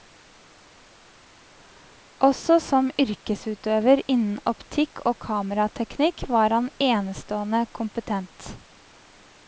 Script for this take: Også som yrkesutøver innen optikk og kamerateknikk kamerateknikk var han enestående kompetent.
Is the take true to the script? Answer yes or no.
no